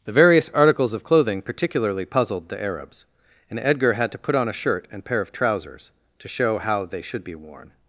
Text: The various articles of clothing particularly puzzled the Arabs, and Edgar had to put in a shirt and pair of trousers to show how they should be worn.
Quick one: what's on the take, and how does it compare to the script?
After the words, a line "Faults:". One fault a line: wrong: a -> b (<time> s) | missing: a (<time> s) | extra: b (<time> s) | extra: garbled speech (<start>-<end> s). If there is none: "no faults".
The various articles of clothing particularly puzzled the Arabs, and Edgar had to put on a shirt and pair of trousers to show how they should be worn.
Faults:
wrong: in -> on (4.3 s)